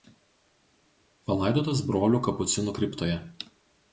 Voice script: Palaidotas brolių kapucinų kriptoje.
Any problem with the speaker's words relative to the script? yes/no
no